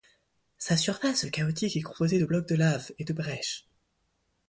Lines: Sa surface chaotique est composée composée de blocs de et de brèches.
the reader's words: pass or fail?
fail